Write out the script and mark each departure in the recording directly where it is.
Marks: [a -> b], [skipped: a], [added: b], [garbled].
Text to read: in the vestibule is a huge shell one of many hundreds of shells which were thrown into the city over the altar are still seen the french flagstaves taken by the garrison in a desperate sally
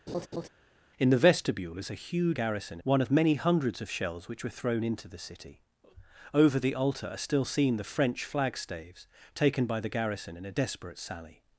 in the vestibule is a huge [shell -> garrison] one of many hundreds of shells which were thrown into the city over the altar are still seen the french flagstaves taken by the garrison in a desperate sally